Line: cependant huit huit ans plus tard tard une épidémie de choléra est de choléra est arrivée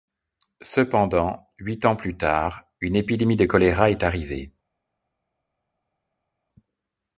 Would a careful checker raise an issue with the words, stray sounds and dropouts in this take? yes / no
yes